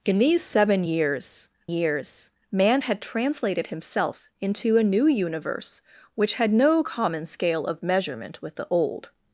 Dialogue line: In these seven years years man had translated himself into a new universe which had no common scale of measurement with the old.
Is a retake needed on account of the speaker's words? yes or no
no